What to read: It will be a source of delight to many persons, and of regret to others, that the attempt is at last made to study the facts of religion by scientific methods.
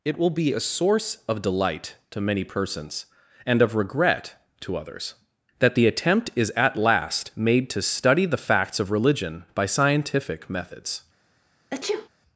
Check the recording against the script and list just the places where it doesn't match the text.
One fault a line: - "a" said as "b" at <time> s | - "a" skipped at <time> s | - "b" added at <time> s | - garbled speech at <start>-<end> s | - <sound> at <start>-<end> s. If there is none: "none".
- sneeze at 11.7-12.1 s